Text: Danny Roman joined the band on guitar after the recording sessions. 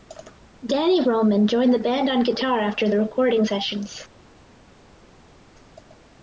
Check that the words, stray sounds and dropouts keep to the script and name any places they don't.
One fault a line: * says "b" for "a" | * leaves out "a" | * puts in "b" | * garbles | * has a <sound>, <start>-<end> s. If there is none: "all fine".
all fine